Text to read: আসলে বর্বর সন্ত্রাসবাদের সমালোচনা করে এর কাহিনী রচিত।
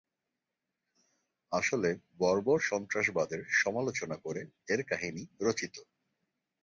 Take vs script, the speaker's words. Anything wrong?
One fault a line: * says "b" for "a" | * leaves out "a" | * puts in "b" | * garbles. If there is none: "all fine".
all fine